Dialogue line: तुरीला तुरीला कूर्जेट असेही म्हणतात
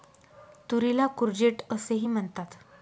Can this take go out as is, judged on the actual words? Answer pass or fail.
fail